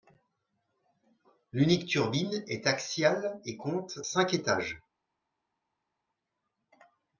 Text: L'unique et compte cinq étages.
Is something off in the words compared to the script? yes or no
yes